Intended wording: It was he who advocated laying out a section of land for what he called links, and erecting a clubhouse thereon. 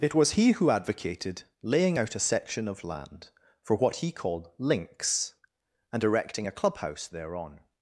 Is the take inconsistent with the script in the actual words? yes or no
no